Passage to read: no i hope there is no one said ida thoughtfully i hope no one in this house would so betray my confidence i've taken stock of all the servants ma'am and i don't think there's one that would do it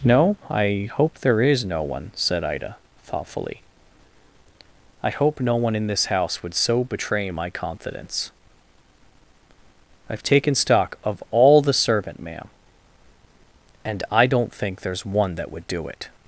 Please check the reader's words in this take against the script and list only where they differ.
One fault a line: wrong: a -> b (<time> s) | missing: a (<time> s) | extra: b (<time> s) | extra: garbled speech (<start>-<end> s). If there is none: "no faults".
wrong: servants -> servant (11.7 s)